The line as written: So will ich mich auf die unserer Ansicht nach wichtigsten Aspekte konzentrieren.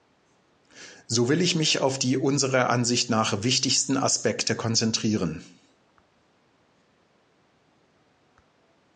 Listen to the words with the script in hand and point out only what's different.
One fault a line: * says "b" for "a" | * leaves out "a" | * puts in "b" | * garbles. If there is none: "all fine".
all fine